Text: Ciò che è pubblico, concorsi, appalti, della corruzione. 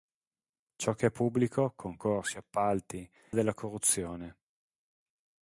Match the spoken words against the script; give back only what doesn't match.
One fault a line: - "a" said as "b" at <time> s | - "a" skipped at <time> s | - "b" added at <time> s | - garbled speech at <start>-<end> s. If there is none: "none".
none